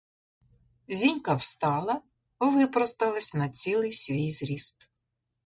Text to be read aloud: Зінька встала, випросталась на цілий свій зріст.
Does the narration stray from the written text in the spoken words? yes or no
no